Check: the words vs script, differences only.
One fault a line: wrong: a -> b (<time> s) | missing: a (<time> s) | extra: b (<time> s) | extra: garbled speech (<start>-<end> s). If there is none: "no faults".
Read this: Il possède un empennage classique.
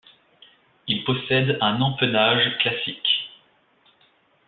no faults